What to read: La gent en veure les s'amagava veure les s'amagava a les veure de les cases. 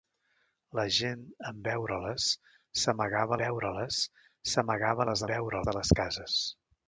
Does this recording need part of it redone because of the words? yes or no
no